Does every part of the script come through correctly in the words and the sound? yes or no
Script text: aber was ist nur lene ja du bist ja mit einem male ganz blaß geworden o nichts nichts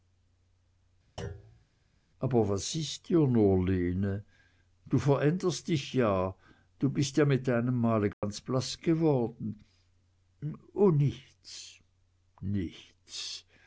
no